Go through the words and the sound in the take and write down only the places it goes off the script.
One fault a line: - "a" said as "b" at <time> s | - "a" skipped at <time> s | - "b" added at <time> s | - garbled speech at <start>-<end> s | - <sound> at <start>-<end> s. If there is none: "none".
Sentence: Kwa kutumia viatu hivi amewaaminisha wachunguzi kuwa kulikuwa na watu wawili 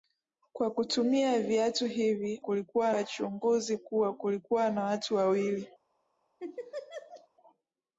- "amewaaminisha" said as "kulikuwa" at 2.4 s
- laugh at 6.4-7.3 s